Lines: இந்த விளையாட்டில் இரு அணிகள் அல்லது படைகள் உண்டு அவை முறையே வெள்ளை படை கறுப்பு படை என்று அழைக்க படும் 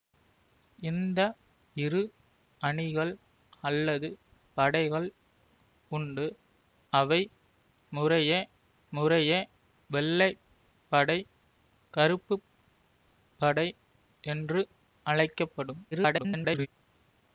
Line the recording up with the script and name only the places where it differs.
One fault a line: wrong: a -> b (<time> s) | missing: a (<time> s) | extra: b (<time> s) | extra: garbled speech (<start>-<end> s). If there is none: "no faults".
missing: விளையாட்டில் (1.2 s)
extra: முறையே (8.9 s)
extra: garbled speech (15.9-16.7 s)